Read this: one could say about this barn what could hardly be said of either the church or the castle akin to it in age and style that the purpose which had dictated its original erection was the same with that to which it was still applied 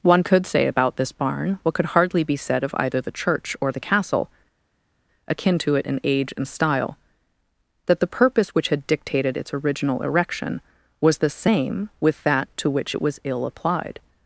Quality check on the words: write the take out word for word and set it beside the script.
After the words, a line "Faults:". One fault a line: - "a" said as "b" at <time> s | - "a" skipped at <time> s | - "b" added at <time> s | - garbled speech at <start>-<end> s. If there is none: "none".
one could say about this barn what could hardly be said of either the church or the castle akin to it in age and style that the purpose which had dictated its original erection was the same with that to which it was ill applied
Faults:
- "still" said as "ill" at 13.2 s